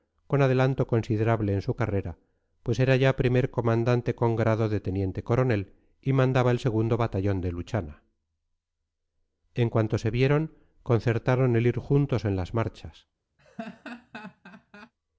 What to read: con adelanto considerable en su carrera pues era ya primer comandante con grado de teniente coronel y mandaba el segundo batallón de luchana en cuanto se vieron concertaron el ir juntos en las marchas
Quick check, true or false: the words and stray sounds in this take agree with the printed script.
false